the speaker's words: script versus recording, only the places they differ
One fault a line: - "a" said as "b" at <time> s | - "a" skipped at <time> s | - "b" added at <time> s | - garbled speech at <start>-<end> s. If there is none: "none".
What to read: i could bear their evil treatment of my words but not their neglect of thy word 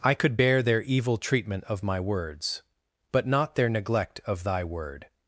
none